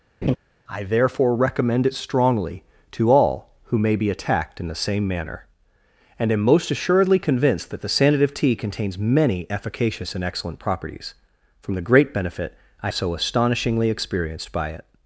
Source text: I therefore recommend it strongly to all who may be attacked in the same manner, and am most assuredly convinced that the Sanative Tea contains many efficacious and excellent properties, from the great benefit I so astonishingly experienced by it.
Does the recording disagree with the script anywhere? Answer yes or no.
no